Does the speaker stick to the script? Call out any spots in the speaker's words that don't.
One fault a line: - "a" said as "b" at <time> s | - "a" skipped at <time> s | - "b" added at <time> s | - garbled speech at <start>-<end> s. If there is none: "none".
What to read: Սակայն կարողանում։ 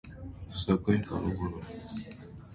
none